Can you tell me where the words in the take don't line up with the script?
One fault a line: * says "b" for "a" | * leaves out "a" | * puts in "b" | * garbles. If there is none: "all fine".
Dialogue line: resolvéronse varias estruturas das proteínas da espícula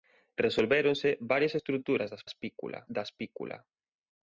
* says "espícula" for "proteínas"